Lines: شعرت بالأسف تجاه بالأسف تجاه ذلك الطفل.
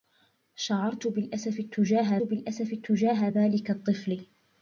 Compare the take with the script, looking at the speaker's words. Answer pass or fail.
pass